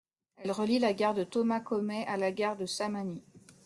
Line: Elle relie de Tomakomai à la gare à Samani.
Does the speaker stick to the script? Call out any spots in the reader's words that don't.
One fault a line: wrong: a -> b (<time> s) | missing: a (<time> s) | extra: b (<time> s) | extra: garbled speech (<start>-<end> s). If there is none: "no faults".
extra: la gare (0.8 s)
wrong: à -> de (2.5 s)